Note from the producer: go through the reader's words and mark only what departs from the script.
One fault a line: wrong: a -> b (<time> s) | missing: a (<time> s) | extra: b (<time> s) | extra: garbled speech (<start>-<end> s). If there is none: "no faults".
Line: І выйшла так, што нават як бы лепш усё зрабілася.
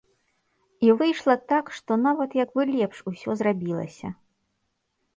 no faults